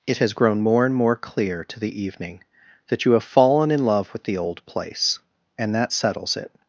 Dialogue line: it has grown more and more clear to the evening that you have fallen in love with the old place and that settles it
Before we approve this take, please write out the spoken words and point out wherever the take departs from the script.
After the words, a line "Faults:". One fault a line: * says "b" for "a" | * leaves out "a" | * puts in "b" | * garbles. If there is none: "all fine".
it has grown more and more clear to the evening that you have fallen in love with the old place and that settles it
Faults:
all fine